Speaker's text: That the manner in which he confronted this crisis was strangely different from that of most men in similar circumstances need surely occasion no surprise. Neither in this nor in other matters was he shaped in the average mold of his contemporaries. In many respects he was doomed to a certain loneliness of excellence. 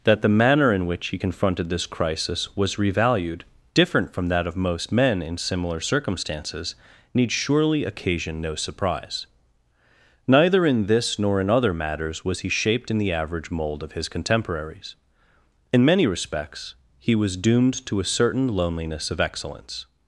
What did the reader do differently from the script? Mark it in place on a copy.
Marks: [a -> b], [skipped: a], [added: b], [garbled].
That the manner in which he confronted this crisis was [strangely -> revalued] different from that of most men in similar circumstances need surely occasion no surprise. Neither in this nor in other matters was he shaped in the average mold of his contemporaries. In many respects he was doomed to a certain loneliness of excellence.